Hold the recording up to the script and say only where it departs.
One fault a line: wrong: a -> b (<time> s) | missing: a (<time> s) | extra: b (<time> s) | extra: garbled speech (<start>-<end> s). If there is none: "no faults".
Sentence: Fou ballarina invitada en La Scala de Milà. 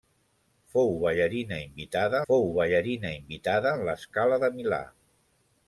extra: fou ballarina invitada (2.3 s)